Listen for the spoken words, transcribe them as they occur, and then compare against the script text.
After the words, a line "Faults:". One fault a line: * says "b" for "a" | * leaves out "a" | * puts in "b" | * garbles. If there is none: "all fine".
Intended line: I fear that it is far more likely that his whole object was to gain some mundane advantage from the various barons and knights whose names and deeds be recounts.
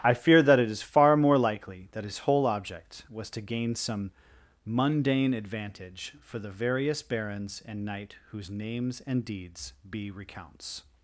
I fear that it is far more likely that his whole object was to gain some mundane advantage for the various barons and knight whose names and deeds be recounts.
Faults:
* says "for" for "from"
* says "knight" for "knights"